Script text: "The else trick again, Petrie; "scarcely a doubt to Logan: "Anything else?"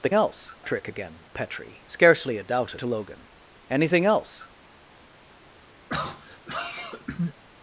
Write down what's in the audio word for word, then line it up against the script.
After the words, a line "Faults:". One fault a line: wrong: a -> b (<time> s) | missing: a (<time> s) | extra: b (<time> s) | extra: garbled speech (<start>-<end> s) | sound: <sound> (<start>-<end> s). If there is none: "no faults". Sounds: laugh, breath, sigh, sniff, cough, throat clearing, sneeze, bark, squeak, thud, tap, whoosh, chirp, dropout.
"The else trick again, Petrie; "scarcely a doubt to Logan: "Anything else?"
Faults:
sound: throat clearing (5.8-7.4 s)